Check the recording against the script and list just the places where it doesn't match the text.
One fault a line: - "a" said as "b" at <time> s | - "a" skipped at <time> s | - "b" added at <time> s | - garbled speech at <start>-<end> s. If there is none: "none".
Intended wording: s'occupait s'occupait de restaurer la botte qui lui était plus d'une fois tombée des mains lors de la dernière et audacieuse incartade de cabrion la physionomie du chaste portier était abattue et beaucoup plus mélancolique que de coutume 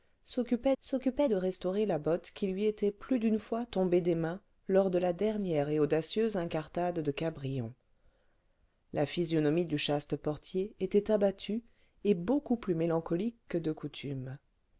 none